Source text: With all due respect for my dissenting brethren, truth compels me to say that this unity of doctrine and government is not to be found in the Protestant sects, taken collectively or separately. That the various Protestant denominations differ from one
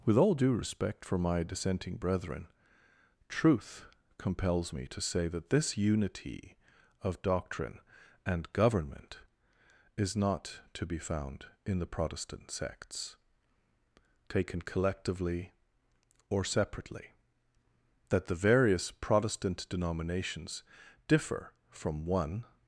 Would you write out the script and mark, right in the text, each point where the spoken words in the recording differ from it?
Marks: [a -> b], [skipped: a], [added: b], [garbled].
With all due respect for my dissenting brethren, truth compels me to say that this unity of doctrine and government is not to be found in the Protestant sects, taken collectively or separately. That the various Protestant denominations differ from one